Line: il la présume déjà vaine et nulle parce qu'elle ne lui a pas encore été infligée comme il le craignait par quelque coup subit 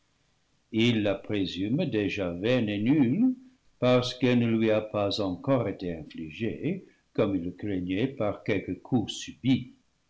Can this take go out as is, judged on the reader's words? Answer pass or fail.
pass